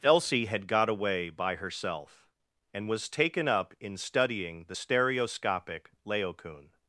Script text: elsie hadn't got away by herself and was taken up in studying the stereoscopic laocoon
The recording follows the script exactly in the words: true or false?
false